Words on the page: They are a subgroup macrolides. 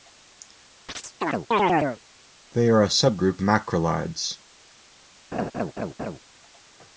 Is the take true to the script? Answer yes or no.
yes